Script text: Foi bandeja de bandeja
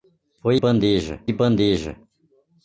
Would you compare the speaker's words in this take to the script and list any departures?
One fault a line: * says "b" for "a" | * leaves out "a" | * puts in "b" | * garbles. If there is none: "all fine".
all fine